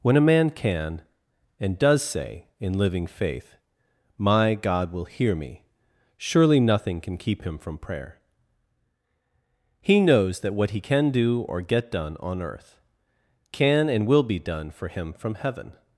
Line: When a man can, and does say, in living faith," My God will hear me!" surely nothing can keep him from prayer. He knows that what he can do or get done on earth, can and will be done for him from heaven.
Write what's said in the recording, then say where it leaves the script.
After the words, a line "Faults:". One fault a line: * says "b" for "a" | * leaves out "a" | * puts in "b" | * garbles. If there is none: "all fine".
When a man can, and does say, in living faith," My God will hear me!" surely nothing can keep him from prayer. He knows that what he can do or get done on earth, can and will be done for him from heaven.
Faults:
all fine